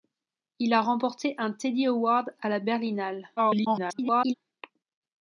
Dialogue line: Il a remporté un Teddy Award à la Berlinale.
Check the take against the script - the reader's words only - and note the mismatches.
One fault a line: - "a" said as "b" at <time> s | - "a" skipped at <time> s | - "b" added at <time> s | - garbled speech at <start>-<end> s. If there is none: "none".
- garbled speech at 3.4-4.3 s